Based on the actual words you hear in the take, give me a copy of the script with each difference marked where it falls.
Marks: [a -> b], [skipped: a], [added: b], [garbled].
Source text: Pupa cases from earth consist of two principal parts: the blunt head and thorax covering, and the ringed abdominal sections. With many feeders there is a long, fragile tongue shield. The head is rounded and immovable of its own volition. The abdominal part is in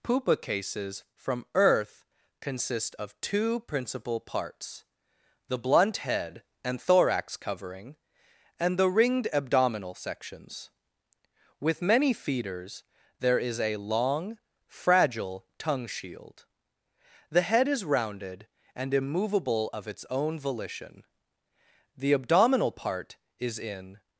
Pupa cases from earth consist of two principal parts: the blunt head and thorax covering, and the ringed abdominal sections. With many feeders there is a long, fragile tongue shield. The head is rounded and immovable of its own volition. The abdominal part is in